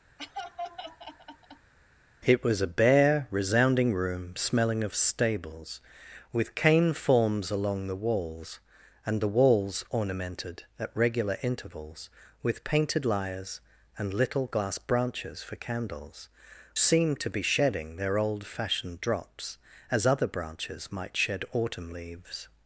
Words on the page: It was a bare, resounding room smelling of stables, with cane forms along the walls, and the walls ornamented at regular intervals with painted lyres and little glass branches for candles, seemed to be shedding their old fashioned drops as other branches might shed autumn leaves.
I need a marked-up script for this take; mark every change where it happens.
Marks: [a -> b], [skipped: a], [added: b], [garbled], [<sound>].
[laugh] It was a bare, resounding room smelling of stables, with cane forms along the walls, and the walls ornamented at regular intervals with painted lyres and little glass branches for candles, seemed to be shedding their old fashioned drops as other branches might shed autumn leaves.